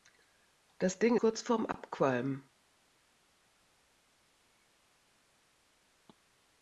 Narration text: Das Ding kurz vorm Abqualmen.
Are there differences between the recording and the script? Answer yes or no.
no